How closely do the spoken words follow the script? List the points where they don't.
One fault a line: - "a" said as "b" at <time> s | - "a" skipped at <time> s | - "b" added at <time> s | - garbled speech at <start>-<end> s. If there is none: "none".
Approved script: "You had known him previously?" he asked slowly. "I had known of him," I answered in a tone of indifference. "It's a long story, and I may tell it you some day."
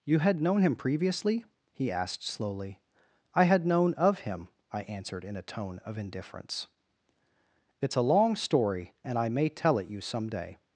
none